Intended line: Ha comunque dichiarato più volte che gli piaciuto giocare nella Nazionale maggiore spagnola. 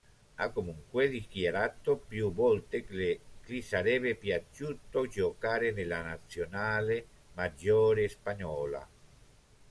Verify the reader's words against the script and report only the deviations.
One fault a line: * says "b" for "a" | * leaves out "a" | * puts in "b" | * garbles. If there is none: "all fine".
* puts in "sarebbe"